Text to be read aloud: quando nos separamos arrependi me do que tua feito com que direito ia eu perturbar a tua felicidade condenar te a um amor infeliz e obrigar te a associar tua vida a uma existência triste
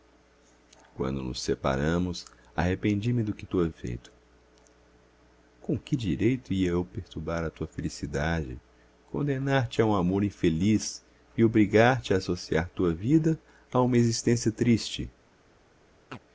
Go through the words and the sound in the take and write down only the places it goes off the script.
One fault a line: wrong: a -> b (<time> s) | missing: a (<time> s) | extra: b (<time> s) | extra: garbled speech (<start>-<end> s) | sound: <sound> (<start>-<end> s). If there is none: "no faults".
sound: chirp (16.1-16.2 s)